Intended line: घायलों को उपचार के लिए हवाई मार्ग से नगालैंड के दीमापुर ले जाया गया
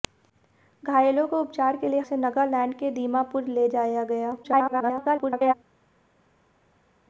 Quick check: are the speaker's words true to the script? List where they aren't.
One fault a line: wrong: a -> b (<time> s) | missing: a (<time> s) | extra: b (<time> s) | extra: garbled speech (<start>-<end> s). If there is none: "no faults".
missing: हवाई मार्ग (2.0 s)
extra: garbled speech (4.4-5.5 s)